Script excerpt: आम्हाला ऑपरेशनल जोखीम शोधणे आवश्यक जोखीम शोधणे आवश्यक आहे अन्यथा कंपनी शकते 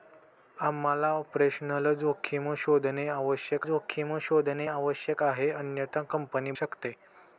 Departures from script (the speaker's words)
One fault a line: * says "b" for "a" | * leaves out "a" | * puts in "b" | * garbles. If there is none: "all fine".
all fine